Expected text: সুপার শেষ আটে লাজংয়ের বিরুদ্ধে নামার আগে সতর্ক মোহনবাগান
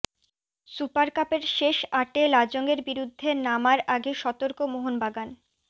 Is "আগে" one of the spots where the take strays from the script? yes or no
no